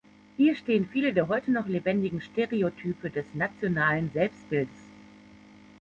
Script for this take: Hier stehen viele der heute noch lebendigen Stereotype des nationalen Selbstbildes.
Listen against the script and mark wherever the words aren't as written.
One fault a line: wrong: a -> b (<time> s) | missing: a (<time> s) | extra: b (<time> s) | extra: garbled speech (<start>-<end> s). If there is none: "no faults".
no faults